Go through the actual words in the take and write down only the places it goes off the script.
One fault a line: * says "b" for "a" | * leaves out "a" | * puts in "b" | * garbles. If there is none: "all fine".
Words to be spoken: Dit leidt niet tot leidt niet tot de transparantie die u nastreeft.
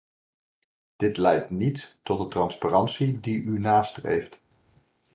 * leaves out "leidt niet tot"